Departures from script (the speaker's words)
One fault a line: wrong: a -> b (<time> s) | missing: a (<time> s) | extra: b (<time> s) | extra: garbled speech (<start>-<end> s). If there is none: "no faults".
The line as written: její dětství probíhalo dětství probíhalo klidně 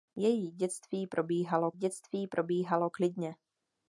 no faults